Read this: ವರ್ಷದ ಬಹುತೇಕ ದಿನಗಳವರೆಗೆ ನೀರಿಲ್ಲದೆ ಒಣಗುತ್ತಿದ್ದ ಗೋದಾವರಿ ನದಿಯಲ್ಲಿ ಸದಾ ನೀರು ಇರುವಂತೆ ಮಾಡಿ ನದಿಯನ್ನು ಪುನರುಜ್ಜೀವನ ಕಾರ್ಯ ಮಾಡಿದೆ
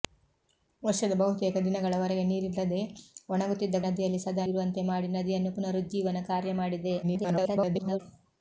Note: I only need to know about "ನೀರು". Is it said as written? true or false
false